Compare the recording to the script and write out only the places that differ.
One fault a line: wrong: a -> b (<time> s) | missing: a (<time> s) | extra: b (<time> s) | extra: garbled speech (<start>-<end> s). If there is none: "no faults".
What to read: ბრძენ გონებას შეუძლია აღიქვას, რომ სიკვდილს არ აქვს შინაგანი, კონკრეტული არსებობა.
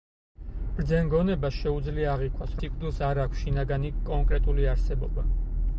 missing: რომ (2.6 s)